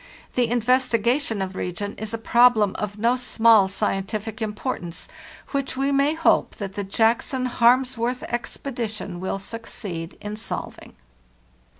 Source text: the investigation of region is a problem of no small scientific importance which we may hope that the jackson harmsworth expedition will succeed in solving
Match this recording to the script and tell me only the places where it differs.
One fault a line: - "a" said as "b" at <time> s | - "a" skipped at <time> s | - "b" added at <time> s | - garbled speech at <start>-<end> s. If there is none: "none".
none